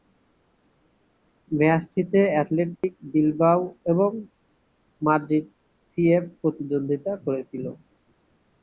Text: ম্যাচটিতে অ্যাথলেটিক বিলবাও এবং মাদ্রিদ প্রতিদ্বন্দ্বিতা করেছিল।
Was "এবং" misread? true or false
false